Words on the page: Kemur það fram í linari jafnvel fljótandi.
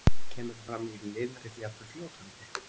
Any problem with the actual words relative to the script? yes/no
no